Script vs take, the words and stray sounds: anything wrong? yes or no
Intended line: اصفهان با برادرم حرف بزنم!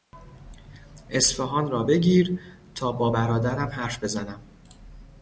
yes